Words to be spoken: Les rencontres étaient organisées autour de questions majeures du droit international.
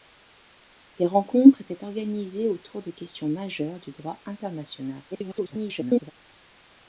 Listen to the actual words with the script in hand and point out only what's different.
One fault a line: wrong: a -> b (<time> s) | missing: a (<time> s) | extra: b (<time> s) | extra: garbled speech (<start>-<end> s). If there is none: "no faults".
extra: garbled speech (5.1-6.1 s)